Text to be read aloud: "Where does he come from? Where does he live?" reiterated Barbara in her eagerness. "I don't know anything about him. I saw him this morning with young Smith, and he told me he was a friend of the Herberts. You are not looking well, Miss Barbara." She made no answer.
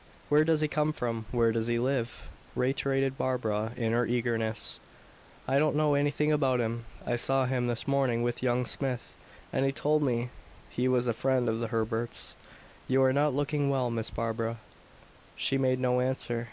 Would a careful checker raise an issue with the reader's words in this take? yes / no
no